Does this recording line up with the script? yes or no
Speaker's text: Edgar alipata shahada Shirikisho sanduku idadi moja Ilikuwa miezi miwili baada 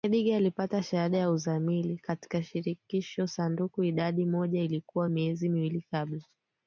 no